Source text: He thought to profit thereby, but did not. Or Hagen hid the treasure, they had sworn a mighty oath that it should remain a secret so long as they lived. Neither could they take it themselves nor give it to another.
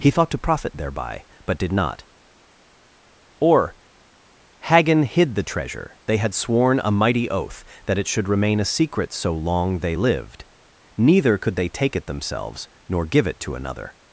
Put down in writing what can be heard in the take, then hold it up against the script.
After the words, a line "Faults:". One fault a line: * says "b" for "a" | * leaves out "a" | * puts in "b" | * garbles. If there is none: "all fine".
He thought to profit thereby, but did not. Or Hagen hid the treasure, they had sworn a mighty oath that it should remain a secret so long they lived. Neither could they take it themselves nor give it to another.
Faults:
* leaves out "as"